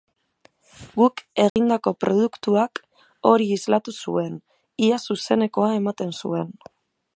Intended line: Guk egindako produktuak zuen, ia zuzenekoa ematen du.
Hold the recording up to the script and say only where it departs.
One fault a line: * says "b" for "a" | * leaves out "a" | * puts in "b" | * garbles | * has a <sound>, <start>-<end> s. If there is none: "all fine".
* has a dropout, 1.5-1.6 s
* puts in "hori islatu"
* says "zuen" for "du"